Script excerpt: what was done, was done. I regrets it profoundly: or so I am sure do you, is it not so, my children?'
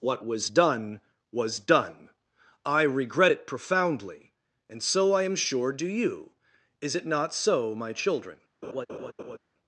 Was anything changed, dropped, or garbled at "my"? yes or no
no